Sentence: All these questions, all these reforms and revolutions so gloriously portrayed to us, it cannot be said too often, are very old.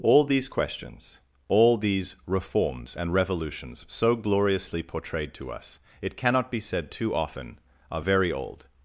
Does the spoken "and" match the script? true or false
true